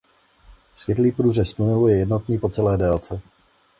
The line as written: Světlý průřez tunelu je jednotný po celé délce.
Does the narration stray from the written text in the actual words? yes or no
no